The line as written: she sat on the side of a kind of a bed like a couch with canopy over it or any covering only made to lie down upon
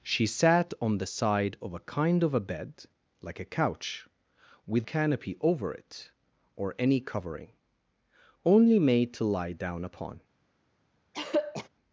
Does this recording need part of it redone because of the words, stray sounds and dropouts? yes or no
yes